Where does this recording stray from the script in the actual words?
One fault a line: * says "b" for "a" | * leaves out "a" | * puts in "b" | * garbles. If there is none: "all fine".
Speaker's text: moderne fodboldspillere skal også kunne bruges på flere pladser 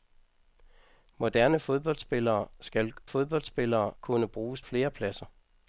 * says "fodboldspillere" for "også"
* leaves out "på"